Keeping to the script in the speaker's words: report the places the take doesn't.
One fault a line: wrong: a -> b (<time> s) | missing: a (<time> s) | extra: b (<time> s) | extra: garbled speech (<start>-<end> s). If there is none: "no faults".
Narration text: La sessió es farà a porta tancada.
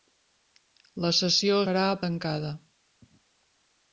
missing: es (1.6 s)
missing: porta (2.0 s)